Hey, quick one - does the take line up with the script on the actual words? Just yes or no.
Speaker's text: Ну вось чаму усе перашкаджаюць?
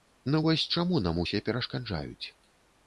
no